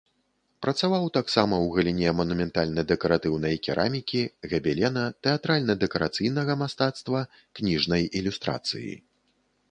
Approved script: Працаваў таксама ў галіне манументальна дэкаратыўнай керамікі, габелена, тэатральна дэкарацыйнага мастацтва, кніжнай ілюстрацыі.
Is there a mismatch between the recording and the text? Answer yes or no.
no